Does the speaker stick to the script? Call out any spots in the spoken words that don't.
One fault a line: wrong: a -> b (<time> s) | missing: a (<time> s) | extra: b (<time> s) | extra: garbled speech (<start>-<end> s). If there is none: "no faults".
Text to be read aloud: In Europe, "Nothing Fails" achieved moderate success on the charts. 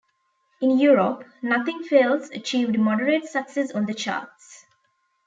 no faults